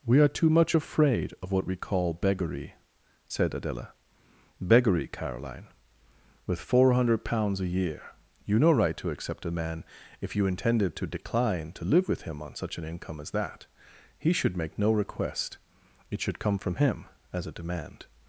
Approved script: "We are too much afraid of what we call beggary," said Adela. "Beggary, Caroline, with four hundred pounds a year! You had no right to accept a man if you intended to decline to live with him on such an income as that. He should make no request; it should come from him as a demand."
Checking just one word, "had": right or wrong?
wrong